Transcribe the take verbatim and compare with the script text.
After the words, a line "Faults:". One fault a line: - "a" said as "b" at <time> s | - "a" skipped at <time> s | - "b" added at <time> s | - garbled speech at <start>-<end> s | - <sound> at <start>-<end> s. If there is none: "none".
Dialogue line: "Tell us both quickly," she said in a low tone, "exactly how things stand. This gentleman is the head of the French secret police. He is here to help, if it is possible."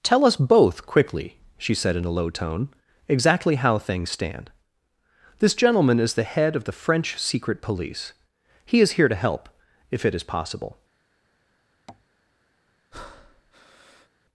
"Tell us both quickly," she said in a low tone, "exactly how things stand. This gentleman is the head of the French secret police. He is here to help, if it is possible."
Faults:
- tap at 11.9-12.1 s
- breath at 12.9-14.1 s